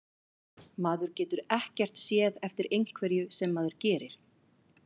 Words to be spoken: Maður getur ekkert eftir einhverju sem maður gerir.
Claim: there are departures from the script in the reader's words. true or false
true